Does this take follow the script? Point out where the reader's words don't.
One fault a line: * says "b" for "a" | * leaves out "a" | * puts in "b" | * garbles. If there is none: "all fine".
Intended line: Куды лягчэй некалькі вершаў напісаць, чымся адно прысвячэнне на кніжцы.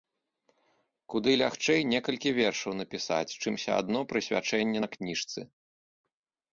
all fine